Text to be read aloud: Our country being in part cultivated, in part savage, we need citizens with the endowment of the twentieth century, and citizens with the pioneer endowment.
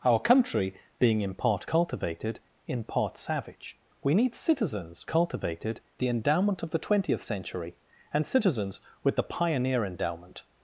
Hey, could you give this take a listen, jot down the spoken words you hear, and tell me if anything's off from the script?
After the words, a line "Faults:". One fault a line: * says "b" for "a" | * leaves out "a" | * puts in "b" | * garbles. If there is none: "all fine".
Our country being in part cultivated, in part savage, we need citizens cultivated the endowment of the twentieth century, and citizens with the pioneer endowment.
Faults:
* says "cultivated" for "with"